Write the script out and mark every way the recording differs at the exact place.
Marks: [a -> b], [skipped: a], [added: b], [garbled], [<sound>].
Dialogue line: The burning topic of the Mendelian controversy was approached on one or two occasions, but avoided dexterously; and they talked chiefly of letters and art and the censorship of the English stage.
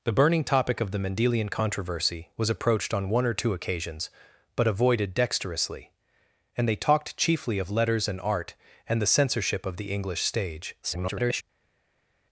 The burning topic of the Mendelian controversy was approached on one or two occasions, but avoided dexterously; and they talked chiefly of letters and art and the censorship of the English stage. [garbled]